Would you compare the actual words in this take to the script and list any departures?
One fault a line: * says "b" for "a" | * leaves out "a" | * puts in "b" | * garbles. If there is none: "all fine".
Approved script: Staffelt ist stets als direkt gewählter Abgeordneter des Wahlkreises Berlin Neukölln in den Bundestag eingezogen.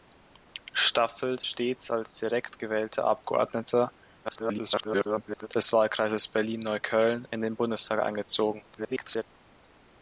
* leaves out "ist"
* garbles
* garbles